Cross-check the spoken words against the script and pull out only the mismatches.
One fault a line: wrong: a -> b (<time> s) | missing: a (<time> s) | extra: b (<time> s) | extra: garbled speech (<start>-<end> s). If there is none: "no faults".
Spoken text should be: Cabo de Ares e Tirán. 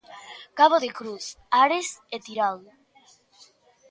extra: Cruz (1.0 s)